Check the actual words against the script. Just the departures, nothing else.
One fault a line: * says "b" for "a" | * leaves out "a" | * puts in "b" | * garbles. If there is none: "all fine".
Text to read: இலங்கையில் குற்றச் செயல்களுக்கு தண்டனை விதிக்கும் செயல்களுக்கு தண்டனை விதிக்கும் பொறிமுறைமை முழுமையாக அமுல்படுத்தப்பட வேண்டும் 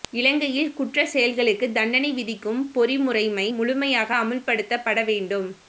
* leaves out "செயல்களுக்கு தண்டனை விதிக்கும்"